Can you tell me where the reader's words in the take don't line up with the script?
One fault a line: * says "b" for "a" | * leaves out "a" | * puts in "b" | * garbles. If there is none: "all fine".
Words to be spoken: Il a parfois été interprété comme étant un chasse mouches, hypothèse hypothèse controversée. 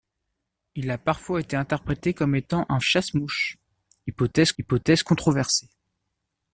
all fine